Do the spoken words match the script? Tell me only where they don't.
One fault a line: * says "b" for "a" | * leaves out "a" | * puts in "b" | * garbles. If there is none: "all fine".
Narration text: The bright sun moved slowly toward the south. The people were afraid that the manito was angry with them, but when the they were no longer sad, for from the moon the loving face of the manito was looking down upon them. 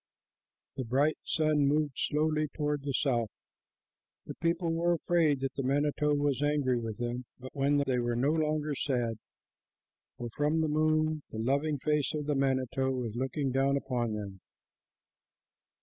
all fine